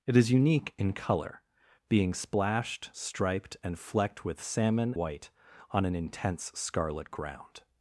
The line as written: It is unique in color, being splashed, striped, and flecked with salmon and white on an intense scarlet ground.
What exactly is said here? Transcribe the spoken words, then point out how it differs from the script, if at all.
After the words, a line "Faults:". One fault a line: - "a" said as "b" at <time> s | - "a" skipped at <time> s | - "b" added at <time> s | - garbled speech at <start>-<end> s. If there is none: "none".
It is unique in color, being splashed, striped, and flecked with salmon white on an intense scarlet ground.
Faults:
- "and" skipped at 4.9 s